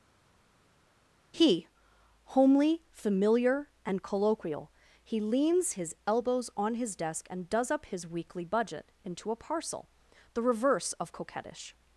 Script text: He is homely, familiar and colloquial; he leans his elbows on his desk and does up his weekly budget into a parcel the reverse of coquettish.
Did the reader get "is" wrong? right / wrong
wrong